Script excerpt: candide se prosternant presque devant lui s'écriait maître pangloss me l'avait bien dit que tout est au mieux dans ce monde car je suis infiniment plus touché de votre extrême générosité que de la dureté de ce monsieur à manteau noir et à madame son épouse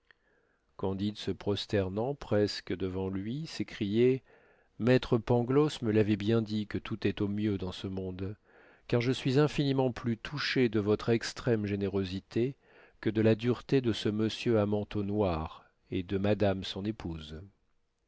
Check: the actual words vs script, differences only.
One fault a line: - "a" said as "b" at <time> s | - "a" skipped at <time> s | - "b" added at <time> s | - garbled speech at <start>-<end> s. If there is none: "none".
- "à" said as "de" at 16.0 s